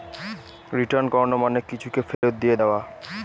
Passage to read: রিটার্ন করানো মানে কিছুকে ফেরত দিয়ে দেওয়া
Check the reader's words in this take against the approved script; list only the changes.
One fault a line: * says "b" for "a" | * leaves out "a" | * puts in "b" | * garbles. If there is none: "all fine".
all fine